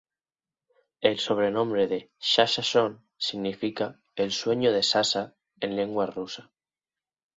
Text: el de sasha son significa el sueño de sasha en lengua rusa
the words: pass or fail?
fail